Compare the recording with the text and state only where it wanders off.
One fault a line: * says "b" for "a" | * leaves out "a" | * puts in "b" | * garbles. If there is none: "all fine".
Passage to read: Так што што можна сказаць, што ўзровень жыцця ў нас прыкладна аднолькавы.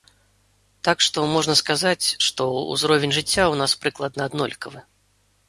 * leaves out "што"